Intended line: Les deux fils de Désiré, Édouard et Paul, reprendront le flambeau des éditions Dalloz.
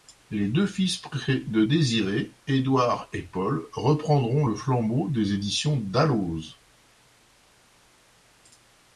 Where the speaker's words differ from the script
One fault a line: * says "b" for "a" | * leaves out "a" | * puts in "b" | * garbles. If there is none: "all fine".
all fine